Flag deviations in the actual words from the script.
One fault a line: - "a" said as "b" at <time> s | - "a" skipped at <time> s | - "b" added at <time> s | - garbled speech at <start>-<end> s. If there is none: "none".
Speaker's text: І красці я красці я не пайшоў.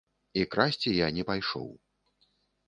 - "красці я" skipped at 1.1 s